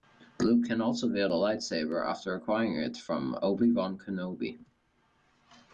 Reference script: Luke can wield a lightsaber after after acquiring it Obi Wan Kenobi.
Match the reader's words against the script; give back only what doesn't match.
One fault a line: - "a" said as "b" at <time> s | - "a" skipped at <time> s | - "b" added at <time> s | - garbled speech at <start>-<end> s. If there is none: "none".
- "also" added at 0.8 s
- "after" skipped at 2.3 s
- "from" added at 3.0 s